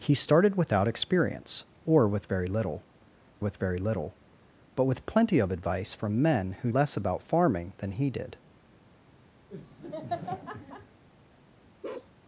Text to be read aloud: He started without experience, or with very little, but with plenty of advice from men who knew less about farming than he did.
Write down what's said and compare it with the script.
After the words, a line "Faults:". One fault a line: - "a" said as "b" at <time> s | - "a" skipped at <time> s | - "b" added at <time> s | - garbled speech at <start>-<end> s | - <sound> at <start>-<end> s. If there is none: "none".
He started without experience, or with very little with very little, but with plenty of advice from men who less about farming than he did.
Faults:
- "with very little" added at 3.4 s
- "knew" skipped at 6.7 s
- laugh at 9.5-11.0 s
- bark at 11.8-12.1 s